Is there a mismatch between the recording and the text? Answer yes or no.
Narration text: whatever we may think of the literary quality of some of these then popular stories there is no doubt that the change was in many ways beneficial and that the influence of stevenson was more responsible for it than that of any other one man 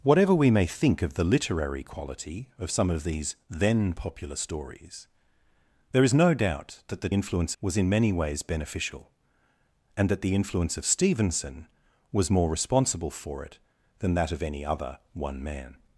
yes